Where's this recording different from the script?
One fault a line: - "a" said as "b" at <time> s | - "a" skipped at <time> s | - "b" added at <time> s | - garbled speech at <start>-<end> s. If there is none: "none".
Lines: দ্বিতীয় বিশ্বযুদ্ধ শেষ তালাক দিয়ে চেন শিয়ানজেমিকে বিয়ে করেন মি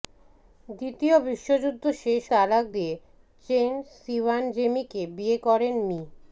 none